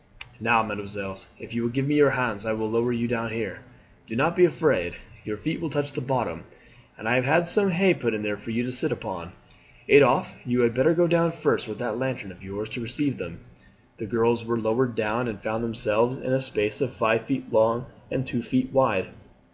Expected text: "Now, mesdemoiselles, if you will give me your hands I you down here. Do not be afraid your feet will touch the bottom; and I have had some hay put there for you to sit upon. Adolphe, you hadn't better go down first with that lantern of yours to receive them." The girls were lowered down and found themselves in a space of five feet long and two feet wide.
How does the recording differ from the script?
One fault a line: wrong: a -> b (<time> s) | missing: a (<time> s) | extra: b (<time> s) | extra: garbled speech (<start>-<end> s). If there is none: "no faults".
extra: will lower (2.5 s)
wrong: hadn't -> had (10.6 s)